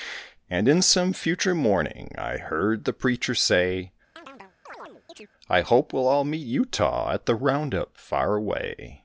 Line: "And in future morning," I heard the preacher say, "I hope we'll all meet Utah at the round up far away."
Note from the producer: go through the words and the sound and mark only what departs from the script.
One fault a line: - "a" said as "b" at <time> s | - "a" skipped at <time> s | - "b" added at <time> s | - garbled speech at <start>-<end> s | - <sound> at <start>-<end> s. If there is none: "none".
- "some" added at 0.8 s
- chirp at 4.2-5.3 s